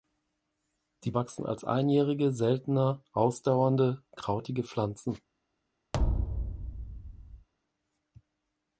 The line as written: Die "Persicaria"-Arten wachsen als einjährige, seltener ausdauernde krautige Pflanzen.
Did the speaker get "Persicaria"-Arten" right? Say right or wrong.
wrong